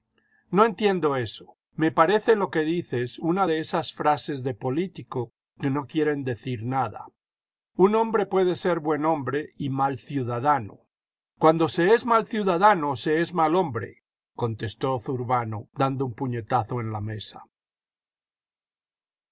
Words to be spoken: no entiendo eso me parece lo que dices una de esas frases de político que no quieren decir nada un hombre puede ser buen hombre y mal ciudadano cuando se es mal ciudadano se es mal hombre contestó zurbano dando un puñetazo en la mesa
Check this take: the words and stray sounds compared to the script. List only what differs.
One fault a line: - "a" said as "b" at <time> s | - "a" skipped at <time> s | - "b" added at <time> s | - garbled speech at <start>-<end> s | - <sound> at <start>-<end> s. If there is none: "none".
none